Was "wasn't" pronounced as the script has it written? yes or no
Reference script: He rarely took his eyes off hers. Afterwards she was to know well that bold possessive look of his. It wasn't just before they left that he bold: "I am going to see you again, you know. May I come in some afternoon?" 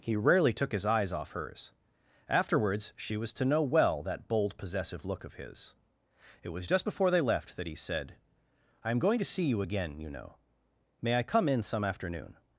no